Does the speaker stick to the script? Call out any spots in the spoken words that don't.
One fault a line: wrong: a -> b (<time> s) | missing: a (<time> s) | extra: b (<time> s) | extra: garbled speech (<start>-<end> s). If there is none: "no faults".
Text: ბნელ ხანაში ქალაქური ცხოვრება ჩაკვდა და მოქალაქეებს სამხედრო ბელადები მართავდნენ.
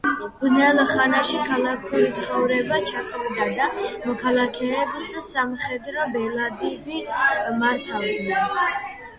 no faults